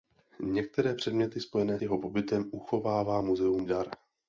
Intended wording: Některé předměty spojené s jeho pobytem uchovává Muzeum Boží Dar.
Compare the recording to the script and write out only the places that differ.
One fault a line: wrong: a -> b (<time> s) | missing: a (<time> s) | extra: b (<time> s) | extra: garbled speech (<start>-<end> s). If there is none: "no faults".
missing: s (1.8 s)
missing: Boží (3.7 s)